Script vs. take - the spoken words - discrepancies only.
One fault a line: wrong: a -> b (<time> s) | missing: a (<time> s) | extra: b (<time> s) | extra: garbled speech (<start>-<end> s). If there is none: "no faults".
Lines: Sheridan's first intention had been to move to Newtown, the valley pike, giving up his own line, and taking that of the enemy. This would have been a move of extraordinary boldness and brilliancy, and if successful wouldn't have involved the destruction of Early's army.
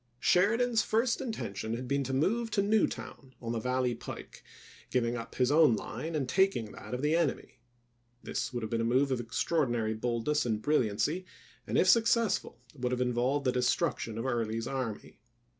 extra: on (3.4 s)
wrong: wouldn't -> would (12.8 s)